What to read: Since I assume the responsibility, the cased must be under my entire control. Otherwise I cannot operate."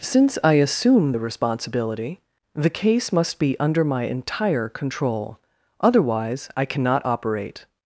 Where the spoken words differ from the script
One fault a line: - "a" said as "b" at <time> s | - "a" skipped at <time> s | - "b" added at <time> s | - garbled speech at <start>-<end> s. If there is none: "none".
- "cased" said as "case" at 2.7 s